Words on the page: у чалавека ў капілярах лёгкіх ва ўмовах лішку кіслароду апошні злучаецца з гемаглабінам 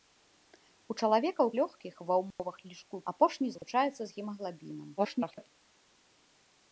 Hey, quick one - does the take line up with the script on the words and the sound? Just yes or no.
no